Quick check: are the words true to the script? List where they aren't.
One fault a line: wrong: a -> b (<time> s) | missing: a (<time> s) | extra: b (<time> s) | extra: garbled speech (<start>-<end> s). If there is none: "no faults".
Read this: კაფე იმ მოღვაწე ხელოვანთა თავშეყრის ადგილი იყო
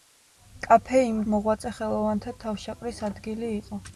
no faults